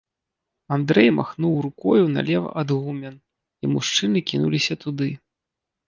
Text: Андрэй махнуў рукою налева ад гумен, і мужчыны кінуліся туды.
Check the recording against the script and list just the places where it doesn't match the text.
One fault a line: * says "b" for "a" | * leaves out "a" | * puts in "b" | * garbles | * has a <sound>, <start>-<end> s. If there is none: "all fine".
all fine